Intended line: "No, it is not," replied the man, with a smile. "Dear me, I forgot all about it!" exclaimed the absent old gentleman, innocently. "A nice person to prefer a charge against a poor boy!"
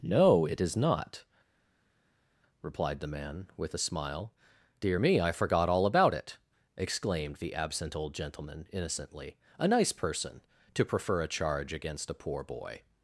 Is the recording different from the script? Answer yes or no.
no